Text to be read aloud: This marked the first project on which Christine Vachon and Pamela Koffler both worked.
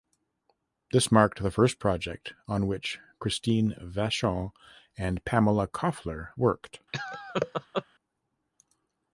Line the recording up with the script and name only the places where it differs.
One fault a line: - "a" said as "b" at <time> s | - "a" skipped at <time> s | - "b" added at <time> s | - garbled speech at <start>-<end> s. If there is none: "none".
- "both" skipped at 6.3 s